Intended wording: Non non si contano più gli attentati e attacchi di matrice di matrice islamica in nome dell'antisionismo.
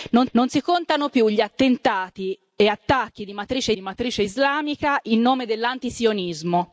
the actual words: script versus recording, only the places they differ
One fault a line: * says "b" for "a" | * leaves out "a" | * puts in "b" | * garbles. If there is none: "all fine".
all fine